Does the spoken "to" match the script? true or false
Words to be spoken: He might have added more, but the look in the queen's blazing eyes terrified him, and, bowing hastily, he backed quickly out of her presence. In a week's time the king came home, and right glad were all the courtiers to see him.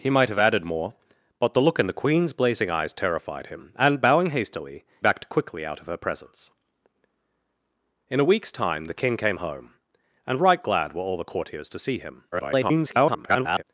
true